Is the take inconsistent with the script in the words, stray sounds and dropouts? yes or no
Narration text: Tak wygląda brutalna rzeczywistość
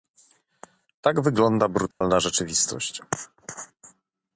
yes